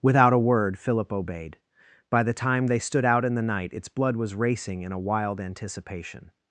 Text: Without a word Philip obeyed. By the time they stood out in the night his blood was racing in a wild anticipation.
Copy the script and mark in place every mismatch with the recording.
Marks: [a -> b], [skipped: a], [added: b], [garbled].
Without a word Philip obeyed. By the time they stood out in the night [his -> its] blood was racing in a wild anticipation.